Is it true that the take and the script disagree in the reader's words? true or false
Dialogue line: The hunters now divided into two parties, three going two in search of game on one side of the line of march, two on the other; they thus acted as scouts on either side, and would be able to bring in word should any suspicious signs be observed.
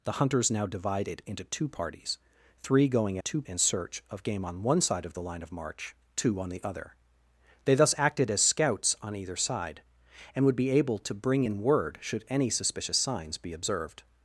false